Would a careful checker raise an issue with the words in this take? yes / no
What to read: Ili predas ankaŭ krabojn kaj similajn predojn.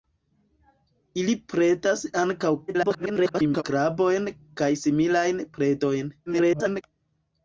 yes